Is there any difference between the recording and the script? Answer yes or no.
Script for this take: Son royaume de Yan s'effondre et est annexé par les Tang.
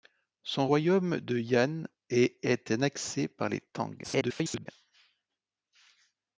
yes